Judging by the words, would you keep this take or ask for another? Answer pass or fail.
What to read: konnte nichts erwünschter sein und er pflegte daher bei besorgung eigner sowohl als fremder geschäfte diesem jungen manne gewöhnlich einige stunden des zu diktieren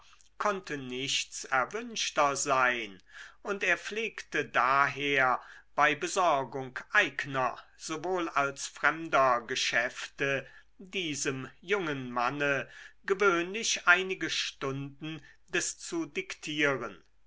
pass